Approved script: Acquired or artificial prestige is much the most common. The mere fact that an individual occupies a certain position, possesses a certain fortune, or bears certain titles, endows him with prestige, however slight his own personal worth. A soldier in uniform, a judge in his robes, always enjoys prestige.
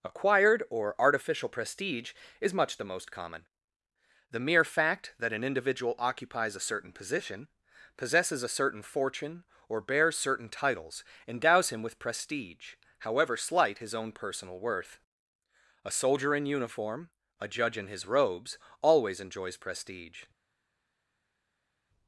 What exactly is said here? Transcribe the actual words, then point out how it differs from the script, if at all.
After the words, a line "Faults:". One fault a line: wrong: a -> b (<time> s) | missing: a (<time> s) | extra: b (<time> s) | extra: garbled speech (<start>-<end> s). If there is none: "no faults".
Acquired or artificial prestige is much the most common. The mere fact that an individual occupies a certain position, possesses a certain fortune, or bears certain titles, endows him with prestige, however slight his own personal worth. A soldier in uniform, a judge in his robes, always enjoys prestige.
Faults:
no faults